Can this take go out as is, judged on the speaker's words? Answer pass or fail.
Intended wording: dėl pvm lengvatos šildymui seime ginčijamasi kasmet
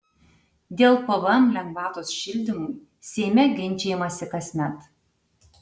pass